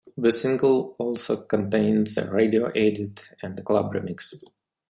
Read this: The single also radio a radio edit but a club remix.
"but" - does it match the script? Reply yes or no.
no